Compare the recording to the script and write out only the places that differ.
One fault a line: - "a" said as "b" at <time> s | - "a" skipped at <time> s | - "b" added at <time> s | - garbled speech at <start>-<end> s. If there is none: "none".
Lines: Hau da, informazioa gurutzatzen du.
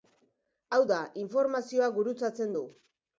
none